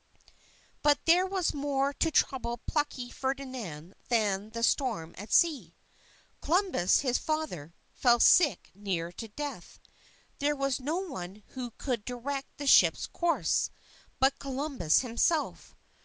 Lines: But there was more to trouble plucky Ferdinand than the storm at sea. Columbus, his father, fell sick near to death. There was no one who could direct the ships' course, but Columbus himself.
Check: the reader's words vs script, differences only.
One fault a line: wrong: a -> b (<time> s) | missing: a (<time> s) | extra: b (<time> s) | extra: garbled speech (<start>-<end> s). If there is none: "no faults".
no faults